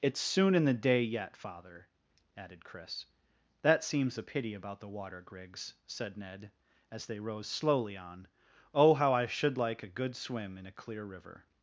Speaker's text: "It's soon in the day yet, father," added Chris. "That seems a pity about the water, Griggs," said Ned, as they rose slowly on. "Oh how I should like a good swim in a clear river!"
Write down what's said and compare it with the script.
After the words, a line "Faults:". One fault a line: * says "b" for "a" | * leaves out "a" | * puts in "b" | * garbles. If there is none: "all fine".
"It's soon in the day yet, father," added Chris. "That seems a pity about the water, Griggs," said Ned, as they rose slowly on. "Oh how I should like a good swim in a clear river!"
Faults:
all fine